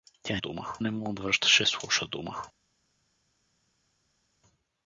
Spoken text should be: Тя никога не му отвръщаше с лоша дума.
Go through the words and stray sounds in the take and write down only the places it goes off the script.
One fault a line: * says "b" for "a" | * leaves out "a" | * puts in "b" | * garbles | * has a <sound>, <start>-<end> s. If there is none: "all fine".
* says "дума" for "никога"